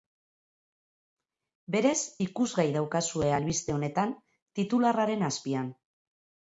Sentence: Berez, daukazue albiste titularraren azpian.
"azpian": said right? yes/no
yes